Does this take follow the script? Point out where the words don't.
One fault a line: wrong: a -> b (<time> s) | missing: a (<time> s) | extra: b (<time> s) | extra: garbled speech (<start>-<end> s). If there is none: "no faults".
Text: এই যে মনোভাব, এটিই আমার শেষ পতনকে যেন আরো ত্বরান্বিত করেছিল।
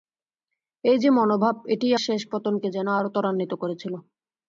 missing: আমার (1.9 s)